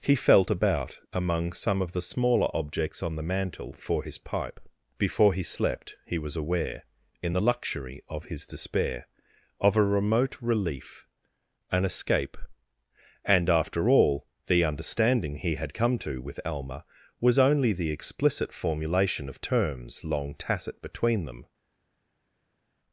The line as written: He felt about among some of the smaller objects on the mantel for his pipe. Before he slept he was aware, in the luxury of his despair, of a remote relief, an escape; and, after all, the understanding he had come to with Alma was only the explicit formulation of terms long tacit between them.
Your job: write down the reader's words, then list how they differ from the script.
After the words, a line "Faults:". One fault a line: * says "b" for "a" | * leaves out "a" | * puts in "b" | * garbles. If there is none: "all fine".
He felt about among some of the smaller objects on the mantel for his pipe. Before he slept he was aware, in the luxury of his despair, of a remote relief, an escape; and, after all, the understanding he had come to with Alma was only the explicit formulation of terms long tacit between them.
Faults:
all fine